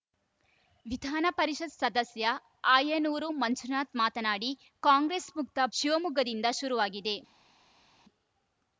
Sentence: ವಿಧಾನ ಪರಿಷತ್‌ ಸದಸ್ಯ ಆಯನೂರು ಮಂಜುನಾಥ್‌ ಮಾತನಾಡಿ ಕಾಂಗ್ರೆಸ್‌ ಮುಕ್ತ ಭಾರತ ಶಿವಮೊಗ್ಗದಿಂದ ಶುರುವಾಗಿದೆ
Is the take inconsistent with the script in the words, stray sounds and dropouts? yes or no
yes